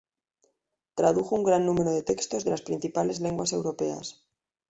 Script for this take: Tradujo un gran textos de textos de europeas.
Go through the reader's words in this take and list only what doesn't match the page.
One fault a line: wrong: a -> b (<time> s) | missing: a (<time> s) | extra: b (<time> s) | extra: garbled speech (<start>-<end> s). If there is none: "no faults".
wrong: textos -> número (1.6 s)
extra: las principales lenguas (2.5 s)